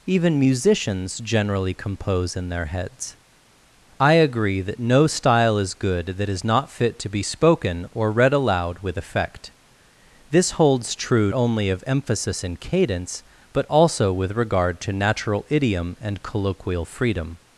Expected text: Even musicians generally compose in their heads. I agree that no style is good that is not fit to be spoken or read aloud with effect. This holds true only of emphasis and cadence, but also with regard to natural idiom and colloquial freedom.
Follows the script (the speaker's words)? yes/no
yes